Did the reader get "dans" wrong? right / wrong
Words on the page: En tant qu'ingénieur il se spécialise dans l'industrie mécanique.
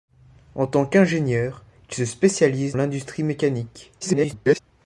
wrong